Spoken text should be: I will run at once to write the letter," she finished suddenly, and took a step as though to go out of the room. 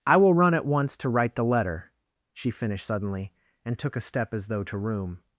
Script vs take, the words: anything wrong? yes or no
yes